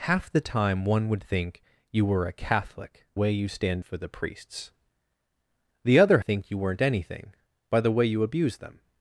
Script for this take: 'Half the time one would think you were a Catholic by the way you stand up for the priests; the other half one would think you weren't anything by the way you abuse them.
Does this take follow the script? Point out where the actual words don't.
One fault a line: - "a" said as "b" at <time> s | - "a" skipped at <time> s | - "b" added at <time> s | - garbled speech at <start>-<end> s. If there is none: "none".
- "by the" skipped at 3.0 s
- "up" skipped at 3.8 s
- "half one would" skipped at 6.2 s